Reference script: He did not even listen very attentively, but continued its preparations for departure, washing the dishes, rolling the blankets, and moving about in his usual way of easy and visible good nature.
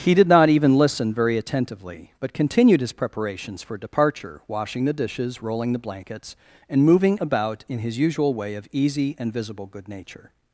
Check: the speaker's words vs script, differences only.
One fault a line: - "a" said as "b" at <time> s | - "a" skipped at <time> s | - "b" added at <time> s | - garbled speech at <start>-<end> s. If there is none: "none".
- "its" said as "his" at 2.8 s